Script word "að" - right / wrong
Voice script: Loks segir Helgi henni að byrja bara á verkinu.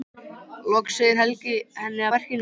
wrong